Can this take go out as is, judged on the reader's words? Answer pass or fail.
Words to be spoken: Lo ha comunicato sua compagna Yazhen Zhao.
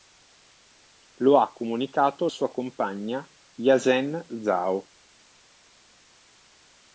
pass